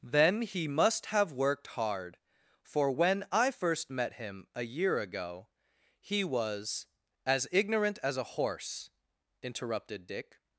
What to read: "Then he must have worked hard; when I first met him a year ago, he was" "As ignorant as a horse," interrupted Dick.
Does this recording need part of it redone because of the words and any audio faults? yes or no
yes